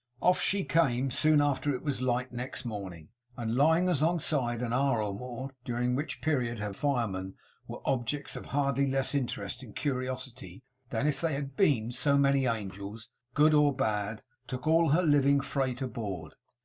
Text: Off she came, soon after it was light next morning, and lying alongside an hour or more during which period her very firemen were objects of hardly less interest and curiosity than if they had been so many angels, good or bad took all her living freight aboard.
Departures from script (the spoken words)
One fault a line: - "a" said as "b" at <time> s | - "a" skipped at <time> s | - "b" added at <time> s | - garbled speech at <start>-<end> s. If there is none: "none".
- "very" skipped at 6.7 s